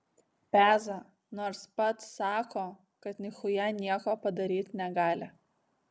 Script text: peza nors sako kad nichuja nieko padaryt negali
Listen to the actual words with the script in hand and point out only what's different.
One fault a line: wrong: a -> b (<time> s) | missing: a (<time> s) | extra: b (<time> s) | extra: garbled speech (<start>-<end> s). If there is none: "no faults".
extra: pats (1.8 s)